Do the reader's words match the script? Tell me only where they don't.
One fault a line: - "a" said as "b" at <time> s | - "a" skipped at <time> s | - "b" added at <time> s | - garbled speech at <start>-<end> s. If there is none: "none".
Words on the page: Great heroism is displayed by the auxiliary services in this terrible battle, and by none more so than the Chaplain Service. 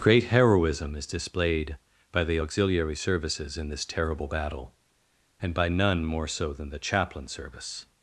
none